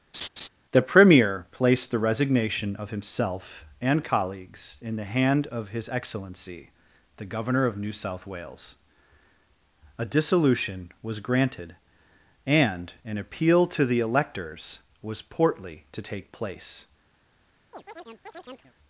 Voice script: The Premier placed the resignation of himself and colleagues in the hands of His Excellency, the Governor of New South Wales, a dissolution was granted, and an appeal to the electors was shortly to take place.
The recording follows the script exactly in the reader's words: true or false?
false